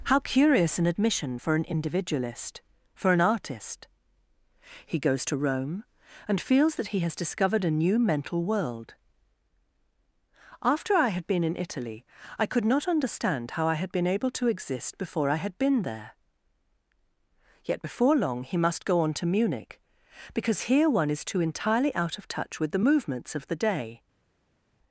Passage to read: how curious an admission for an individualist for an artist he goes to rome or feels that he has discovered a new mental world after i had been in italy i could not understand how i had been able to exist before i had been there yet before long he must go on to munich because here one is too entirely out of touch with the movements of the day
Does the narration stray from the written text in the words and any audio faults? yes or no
yes